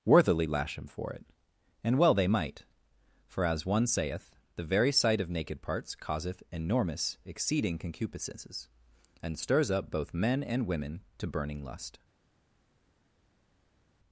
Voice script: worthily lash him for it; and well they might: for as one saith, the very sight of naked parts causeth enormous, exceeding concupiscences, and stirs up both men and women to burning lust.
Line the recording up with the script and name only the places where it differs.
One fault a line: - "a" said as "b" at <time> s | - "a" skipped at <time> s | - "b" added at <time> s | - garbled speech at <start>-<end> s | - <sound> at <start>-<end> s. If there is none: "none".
none